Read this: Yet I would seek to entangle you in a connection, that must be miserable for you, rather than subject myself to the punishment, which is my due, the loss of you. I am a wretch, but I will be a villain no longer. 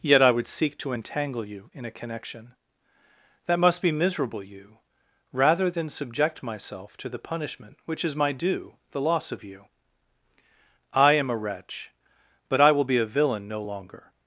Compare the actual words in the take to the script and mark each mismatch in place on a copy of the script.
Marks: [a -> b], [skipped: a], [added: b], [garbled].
Yet I would seek to entangle you in a connection, that must be miserable [skipped: for] you, rather than subject myself to the punishment, which is my due, the loss of you. I am a wretch, but I will be a villain no longer.